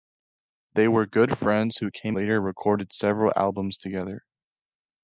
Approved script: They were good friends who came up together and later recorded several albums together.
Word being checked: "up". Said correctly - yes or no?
no